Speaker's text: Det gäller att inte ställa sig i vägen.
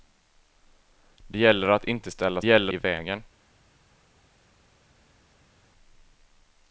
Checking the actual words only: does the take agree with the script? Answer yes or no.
no